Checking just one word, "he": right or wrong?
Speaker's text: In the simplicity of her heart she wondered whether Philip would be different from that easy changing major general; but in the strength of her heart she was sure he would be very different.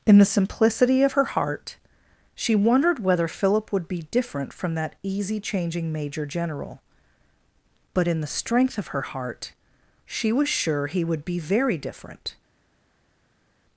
right